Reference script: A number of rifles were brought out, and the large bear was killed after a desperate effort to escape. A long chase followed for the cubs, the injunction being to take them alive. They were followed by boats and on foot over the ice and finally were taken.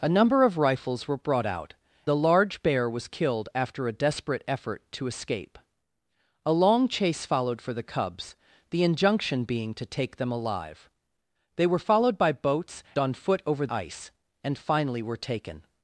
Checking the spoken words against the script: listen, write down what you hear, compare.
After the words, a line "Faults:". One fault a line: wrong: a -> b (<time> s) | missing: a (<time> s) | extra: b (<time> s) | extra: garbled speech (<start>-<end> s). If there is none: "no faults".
A number of rifles were brought out, the large bear was killed after a desperate effort to escape. A long chase followed for the cubs, the injunction being to take them alive. They were followed by boats on foot over ice and finally were taken.
Faults:
missing: and (1.8 s)
missing: and (12.8 s)
missing: the (13.7 s)